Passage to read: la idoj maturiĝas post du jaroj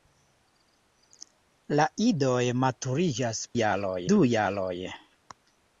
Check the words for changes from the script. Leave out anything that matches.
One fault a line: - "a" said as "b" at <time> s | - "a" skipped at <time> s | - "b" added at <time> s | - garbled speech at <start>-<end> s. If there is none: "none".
- "post" said as "jaroj" at 3.6 s